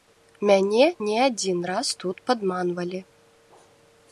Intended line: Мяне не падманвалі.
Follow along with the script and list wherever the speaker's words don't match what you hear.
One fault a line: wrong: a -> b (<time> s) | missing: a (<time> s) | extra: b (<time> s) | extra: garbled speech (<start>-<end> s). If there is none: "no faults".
extra: адзін раз тут (1.2 s)